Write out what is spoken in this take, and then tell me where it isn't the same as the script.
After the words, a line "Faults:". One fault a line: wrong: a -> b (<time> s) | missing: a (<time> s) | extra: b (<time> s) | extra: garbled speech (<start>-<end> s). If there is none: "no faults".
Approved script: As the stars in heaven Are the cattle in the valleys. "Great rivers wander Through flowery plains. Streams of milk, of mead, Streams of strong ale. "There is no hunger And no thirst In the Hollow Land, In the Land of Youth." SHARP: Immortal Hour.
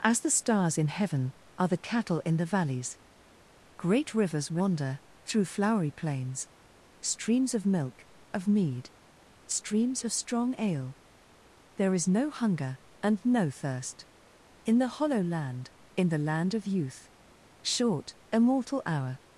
As the stars in heaven Are the cattle in the valleys. "Great rivers wander Through flowery plains. Streams of milk, of mead, Streams of strong ale. "There is no hunger And no thirst In the Hollow Land, In the Land of Youth." Short: Immortal Hour.
Faults:
wrong: SHARP -> Short (17.6 s)